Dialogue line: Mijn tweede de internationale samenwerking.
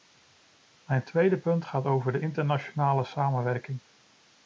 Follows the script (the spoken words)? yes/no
no